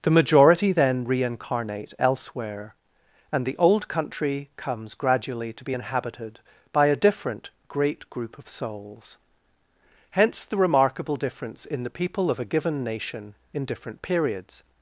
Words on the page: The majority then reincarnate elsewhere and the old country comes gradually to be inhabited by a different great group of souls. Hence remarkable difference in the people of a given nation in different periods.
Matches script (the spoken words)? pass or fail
fail